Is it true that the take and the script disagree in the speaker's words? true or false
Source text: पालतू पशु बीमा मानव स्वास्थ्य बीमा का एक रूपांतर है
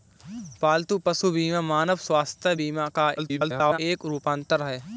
true